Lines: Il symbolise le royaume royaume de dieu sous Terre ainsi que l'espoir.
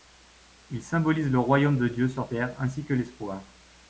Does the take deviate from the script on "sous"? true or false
true